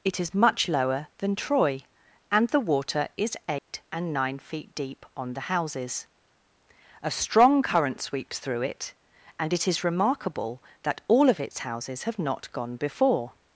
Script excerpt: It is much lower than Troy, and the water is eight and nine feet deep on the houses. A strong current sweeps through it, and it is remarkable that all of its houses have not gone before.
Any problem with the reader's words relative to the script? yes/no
no